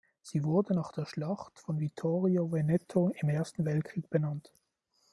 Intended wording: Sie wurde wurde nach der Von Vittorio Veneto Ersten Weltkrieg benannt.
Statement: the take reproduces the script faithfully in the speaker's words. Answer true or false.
false